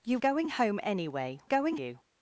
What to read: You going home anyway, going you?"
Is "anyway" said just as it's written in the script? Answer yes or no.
yes